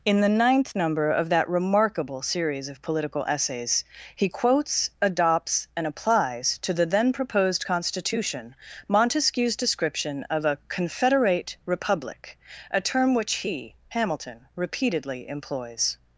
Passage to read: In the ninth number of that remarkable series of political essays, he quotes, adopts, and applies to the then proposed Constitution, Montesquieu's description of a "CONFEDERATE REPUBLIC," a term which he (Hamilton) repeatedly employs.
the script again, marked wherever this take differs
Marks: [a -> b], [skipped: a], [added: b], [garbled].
In the ninth number of that remarkable series of political essays, he quotes, adopts, and applies to the then proposed Constitution, Montesquieu's description of a "CONFEDERATE REPUBLIC," a term which he (Hamilton) repeatedly employs.